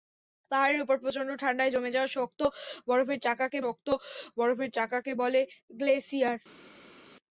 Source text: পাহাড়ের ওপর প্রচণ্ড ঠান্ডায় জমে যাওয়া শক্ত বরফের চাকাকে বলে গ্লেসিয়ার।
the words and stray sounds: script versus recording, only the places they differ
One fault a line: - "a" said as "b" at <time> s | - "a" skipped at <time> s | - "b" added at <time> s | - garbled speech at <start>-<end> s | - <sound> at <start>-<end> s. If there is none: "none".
- "শক্ত বরফের চাকাকে" added at 3.6 s